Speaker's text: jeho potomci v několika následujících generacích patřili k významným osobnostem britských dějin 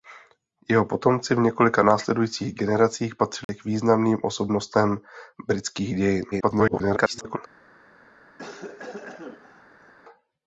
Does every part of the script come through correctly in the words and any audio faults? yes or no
no